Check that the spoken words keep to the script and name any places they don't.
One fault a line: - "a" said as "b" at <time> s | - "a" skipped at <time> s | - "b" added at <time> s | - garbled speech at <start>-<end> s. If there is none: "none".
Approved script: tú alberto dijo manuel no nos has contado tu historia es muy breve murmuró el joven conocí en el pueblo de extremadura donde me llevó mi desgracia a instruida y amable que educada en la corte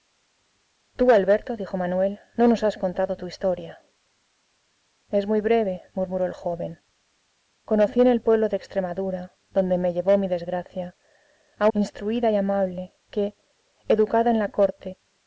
none